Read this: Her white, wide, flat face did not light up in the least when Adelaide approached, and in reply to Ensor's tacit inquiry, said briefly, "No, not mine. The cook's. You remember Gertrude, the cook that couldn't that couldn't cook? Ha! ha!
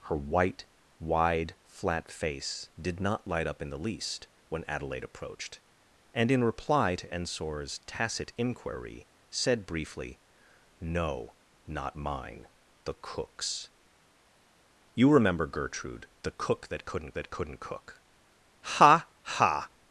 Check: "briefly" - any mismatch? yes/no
no